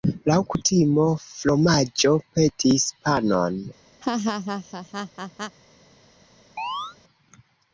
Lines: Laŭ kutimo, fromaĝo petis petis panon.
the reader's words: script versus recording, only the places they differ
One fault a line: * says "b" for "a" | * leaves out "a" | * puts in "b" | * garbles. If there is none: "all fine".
* leaves out "petis"